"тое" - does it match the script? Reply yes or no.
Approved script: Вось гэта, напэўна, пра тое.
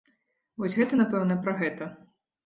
no